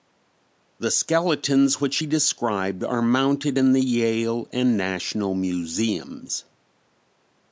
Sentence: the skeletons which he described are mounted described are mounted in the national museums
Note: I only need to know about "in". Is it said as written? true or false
false